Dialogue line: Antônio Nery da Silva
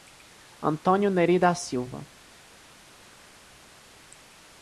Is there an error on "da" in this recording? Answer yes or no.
no